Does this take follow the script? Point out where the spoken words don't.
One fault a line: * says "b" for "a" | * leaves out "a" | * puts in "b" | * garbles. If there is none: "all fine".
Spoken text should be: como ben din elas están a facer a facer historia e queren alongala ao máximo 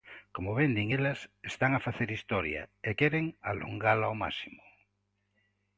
* leaves out "a facer"